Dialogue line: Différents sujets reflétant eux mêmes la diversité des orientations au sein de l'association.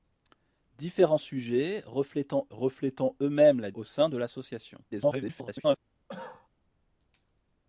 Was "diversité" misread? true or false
true